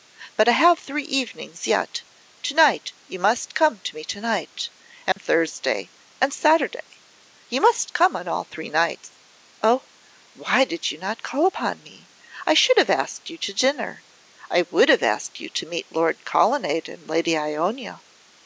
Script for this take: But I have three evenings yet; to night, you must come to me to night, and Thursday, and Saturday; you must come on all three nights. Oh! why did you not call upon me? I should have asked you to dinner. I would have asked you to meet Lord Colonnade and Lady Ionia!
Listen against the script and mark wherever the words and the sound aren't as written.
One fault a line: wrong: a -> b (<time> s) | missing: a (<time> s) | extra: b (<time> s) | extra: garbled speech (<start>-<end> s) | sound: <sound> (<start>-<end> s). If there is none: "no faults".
sound: dropout (5.1-5.2 s)